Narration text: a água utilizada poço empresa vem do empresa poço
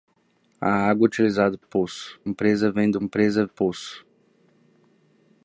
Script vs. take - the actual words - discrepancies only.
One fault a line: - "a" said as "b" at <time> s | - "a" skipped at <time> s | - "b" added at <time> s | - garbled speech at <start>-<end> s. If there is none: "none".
none